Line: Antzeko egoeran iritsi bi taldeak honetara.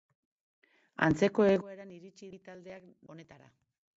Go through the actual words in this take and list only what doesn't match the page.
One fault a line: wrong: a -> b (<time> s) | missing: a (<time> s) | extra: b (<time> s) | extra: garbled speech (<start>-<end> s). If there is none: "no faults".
no faults